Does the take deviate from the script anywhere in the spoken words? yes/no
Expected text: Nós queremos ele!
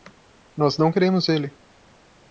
yes